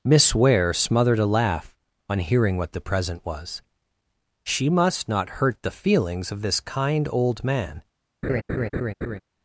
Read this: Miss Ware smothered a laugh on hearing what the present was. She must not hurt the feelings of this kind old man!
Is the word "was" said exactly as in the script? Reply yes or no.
yes